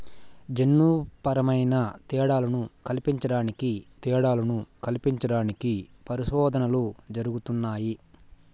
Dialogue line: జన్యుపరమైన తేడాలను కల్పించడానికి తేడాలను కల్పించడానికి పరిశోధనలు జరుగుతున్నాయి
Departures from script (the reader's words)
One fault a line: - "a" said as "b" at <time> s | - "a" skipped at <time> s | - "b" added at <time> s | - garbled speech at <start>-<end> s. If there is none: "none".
none